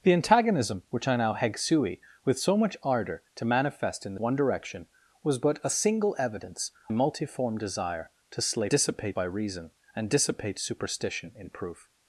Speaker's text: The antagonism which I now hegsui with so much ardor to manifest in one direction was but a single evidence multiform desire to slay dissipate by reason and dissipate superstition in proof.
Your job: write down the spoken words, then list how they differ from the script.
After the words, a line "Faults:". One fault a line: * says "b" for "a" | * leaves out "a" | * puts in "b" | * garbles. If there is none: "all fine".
The antagonism which I now hegsui with so much ardor to manifest in one direction was but a single evidence multiform desire to slay dissipate by reason and dissipate superstition in proof.
Faults:
all fine